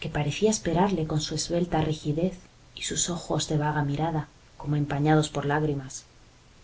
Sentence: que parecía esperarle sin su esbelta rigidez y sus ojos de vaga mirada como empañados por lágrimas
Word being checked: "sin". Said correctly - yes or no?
no